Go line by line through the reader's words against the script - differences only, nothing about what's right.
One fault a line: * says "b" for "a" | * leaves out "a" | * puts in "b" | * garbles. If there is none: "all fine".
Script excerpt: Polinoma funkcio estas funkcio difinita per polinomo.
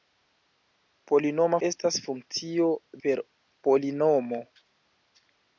* leaves out "funkcio"
* leaves out "difinita"